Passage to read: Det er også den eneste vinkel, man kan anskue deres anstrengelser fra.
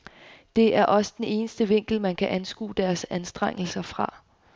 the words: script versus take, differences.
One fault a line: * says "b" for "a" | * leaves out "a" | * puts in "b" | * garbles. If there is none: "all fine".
all fine